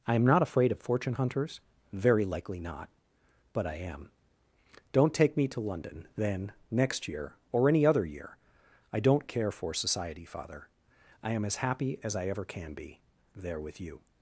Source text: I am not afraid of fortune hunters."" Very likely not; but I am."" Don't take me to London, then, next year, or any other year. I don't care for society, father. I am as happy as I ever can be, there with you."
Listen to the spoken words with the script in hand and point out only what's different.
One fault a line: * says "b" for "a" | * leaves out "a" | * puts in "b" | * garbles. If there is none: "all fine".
all fine